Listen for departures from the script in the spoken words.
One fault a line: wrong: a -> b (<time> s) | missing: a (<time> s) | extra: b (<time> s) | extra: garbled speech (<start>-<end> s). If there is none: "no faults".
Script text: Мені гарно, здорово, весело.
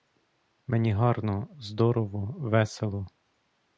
no faults